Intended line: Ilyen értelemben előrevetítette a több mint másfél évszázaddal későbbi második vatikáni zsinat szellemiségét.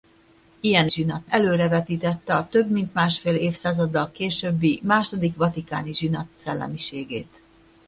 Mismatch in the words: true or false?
true